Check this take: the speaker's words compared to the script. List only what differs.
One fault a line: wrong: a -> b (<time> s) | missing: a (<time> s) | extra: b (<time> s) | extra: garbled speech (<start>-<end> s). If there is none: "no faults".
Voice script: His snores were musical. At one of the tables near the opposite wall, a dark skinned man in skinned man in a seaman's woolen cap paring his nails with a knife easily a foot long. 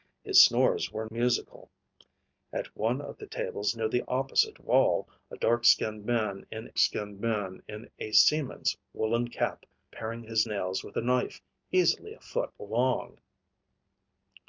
no faults